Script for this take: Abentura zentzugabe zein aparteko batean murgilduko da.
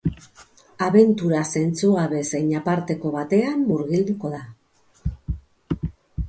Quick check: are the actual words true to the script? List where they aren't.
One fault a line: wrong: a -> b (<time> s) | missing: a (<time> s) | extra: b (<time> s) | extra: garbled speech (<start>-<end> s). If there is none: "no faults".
no faults